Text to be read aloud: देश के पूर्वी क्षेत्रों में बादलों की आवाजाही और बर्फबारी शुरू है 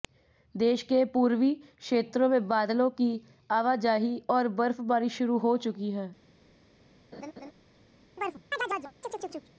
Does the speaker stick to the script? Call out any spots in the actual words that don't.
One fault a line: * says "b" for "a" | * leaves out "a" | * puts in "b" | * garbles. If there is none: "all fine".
* puts in "हो चुकी"